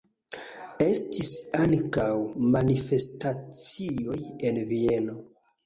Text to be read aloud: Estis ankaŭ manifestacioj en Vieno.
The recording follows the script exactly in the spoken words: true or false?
true